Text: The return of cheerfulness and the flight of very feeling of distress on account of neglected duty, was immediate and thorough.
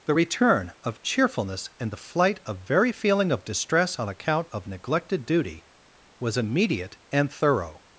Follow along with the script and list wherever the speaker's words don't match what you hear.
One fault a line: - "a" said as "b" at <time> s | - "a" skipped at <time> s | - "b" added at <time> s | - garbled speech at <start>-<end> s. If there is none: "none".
none